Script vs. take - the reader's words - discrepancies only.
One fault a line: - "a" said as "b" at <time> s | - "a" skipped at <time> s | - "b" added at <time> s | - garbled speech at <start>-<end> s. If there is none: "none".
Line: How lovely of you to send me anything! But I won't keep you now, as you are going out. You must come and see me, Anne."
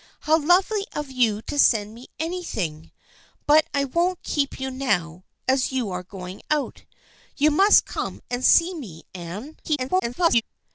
- garbled speech at 9.6-10.4 s